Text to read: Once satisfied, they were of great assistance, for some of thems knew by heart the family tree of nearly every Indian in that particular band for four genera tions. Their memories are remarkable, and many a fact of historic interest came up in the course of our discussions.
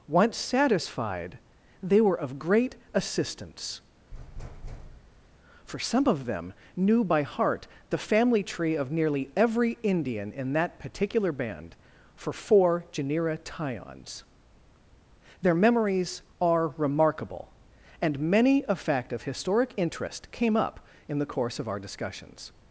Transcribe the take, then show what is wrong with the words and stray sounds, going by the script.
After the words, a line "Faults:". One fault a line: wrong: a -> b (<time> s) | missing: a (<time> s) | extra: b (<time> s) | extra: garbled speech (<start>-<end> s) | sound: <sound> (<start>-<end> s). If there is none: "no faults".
Once satisfied, they were of great assistance, for some of them knew by heart the family tree of nearly every Indian in that particular band for four genera tions. Their memories are remarkable, and many a fact of historic interest came up in the course of our discussions.
Faults:
sound: thud (4.1-5.3 s)
wrong: thems -> them (6.3 s)